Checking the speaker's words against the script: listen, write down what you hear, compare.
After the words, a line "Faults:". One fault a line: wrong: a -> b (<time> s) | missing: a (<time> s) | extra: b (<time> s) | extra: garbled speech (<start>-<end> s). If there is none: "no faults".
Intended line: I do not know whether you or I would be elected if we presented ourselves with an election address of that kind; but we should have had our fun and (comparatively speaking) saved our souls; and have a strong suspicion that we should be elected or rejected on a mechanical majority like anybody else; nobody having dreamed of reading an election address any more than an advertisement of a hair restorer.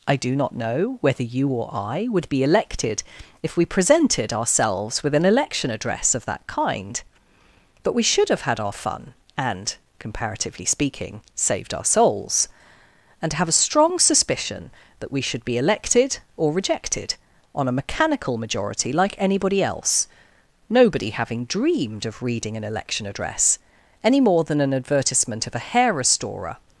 I do not know whether you or I would be elected if we presented ourselves with an election address of that kind; but we should have had our fun and (comparatively speaking) saved our souls; and have a strong suspicion that we should be elected or rejected on a mechanical majority like anybody else; nobody having dreamed of reading an election address any more than an advertisement of a hair restorer.
Faults:
no faults